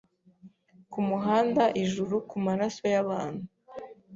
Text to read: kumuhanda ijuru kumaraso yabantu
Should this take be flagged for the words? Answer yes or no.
no